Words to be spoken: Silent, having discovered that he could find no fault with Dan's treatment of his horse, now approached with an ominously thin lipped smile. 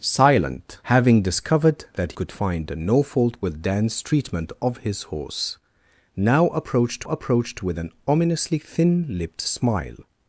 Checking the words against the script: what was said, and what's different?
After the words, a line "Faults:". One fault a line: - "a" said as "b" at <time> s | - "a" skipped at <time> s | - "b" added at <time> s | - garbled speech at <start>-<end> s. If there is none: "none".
Silent, having discovered that could find no fault with Dan's treatment of his horse, now approached approached with an ominously thin lipped smile.
Faults:
- "he" skipped at 2.1 s
- "approached" added at 7.0 s